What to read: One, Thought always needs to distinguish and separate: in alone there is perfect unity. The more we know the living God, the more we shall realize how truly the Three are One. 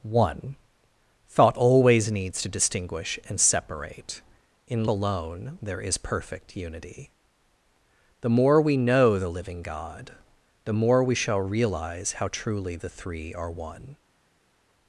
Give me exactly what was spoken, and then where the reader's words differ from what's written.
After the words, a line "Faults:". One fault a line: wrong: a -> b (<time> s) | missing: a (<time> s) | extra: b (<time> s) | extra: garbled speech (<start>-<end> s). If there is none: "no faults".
One, Thought always needs to distinguish and separate: in alone there is perfect unity. The more we know the living God, the more we shall realize how truly the Three are One.
Faults:
no faults